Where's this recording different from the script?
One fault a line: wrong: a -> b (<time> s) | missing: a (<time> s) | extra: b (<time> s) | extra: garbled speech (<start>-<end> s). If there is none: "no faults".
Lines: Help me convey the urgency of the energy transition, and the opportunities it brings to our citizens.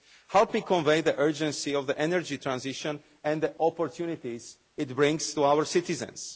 no faults